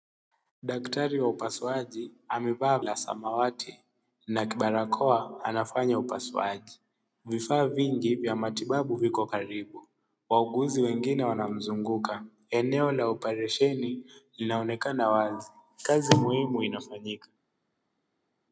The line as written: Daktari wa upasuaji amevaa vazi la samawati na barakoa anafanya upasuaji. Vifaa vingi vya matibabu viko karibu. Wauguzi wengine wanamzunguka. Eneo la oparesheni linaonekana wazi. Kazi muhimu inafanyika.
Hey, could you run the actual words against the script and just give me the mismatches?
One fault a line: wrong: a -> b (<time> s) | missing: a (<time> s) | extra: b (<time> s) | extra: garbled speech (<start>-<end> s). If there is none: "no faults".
missing: vazi (2.8 s)